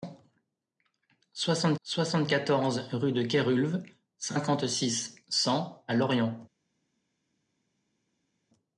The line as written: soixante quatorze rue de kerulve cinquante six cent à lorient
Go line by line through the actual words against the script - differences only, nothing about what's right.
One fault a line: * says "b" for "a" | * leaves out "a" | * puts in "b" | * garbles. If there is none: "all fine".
* puts in "soixante"